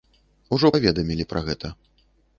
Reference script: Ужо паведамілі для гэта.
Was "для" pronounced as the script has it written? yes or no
no